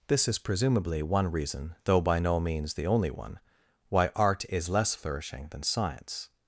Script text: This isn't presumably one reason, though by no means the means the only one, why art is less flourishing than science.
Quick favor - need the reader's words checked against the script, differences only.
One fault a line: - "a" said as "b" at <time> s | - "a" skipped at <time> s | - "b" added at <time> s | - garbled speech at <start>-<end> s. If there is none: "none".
- "isn't" said as "is" at 0.3 s
- "means the" skipped at 2.9 s